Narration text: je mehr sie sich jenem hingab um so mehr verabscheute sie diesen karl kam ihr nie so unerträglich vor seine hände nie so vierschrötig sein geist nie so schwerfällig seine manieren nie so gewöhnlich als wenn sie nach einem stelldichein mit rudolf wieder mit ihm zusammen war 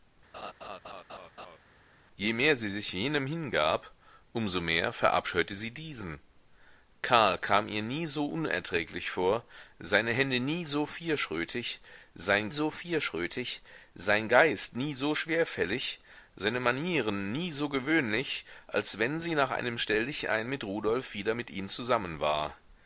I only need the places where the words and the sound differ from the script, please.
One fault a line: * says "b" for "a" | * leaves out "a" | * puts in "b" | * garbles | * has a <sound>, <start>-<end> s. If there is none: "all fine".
* has a laugh, 0.3-1.6 s
* puts in "so vierschrötig sein"